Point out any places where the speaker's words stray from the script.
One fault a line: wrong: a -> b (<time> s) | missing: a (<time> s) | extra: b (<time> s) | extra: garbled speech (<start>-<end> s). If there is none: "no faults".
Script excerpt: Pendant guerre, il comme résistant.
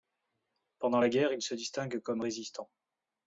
extra: la (1.0 s)
extra: se distingue (1.4 s)